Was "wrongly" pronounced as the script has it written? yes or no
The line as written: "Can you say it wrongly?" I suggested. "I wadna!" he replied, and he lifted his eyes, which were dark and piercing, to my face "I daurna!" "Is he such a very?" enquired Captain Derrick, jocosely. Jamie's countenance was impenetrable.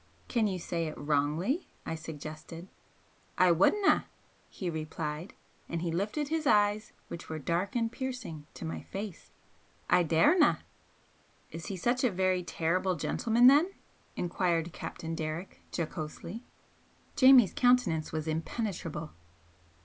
yes